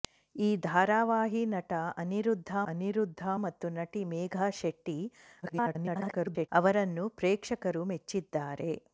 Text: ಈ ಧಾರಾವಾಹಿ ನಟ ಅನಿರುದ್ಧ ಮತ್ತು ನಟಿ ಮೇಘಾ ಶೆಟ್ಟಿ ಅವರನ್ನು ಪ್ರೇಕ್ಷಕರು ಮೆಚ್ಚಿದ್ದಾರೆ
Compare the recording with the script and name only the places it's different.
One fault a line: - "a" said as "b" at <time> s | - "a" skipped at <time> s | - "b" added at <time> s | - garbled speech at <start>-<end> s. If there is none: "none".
- "ಅನಿರುದ್ಧ" added at 2.7 s
- garbled speech at 5.4-6.5 s